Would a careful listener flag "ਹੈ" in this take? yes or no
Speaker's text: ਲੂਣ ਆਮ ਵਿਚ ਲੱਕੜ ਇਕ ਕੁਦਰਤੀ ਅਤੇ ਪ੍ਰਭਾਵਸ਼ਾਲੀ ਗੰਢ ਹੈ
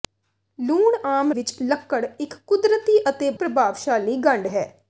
no